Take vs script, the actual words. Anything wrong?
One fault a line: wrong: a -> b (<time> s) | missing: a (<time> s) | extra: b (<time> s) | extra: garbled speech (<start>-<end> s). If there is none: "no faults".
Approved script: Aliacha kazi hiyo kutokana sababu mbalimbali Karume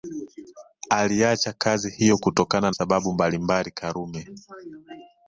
no faults